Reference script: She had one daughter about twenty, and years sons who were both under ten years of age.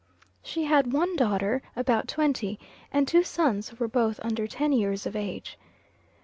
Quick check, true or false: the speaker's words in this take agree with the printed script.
false